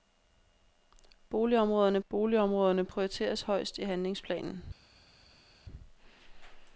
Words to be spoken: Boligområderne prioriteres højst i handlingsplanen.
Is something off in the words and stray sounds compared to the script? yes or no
yes